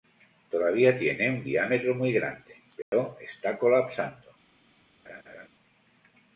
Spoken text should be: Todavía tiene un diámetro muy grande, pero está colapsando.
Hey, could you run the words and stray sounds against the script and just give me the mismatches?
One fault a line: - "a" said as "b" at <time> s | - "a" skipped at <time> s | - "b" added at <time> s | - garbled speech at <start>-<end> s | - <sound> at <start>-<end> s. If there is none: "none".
- dropout at 2.8-2.9 s
- laugh at 5.0-5.5 s